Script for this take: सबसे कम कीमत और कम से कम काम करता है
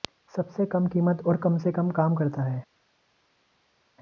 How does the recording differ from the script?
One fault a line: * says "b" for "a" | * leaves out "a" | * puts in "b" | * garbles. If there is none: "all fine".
all fine